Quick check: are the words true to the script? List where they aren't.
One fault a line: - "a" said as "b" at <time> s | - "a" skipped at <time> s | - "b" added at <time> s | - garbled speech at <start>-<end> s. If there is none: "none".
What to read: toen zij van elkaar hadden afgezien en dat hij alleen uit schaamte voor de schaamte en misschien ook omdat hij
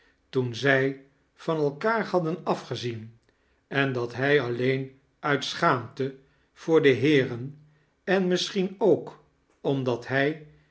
- "schaamte" said as "heeren" at 6.9 s